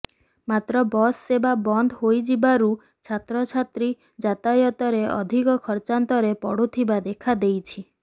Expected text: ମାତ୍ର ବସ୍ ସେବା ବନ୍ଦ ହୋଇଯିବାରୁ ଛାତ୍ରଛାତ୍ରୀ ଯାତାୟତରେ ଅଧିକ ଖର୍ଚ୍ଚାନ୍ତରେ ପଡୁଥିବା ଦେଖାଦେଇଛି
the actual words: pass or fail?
pass